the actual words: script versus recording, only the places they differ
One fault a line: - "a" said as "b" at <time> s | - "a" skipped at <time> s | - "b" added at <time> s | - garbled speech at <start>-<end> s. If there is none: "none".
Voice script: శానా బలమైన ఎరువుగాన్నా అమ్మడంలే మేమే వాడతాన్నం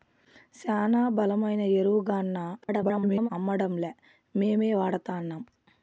- garbled speech at 2.6-3.3 s